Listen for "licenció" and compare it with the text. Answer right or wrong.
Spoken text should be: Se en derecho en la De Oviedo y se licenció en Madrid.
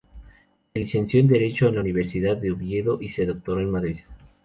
wrong